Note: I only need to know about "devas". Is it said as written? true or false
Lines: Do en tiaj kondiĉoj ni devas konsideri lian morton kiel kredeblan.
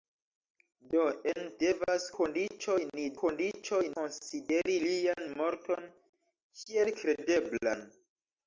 false